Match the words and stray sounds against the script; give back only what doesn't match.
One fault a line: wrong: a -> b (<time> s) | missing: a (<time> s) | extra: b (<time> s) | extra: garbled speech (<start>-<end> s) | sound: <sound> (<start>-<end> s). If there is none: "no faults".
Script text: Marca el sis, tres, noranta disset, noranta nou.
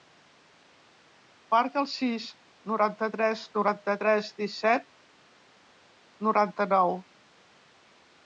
extra: noranta (2.7 s)
extra: tres (4.1 s)